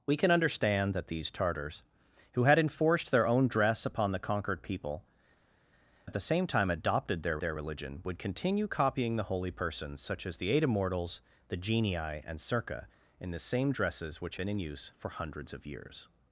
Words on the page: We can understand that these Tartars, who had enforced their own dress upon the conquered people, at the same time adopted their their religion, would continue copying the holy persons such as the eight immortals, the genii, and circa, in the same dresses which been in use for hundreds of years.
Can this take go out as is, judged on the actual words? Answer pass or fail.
pass